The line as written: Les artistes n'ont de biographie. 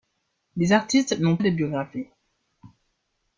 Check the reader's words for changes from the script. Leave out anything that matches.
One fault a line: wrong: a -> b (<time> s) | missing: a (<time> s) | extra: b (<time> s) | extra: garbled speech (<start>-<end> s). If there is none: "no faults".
no faults